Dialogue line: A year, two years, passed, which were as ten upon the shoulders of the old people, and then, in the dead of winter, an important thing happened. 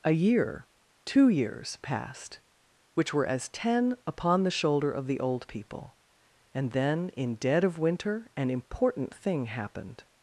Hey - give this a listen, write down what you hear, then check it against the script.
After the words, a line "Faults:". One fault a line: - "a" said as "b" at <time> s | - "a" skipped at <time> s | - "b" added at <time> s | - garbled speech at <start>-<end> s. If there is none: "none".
A year, two years, passed, which were as ten upon the shoulder of the old people, and then, in dead of winter, an important thing happened.
Faults:
- "shoulders" said as "shoulder" at 4.5 s
- "the" skipped at 7.3 s